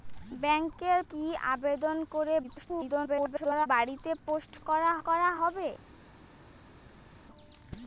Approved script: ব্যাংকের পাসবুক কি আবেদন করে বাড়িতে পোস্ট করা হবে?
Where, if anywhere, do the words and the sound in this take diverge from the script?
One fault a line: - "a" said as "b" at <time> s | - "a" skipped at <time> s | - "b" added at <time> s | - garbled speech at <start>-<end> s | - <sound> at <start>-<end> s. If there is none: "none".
- "পাসবুক" skipped at 1.0 s
- garbled speech at 2.4-3.7 s
- "করা" added at 5.1 s